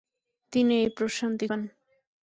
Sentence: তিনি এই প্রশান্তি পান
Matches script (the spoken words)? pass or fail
pass